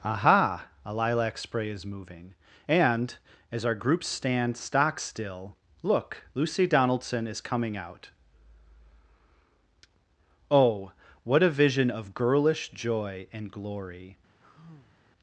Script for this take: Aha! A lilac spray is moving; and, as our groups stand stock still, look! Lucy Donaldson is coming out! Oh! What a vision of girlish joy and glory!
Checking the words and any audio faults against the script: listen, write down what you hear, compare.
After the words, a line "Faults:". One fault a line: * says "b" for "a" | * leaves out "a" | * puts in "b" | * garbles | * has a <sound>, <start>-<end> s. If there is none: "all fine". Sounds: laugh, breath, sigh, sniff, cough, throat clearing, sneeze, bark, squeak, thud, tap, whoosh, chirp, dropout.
Aha! A lilac spray is moving; and, as our groups stand stock still, look! Lucy Donaldson is coming out! Oh! What a vision of girlish joy and glory!
Faults:
* has a sigh, 14.4-15.0 s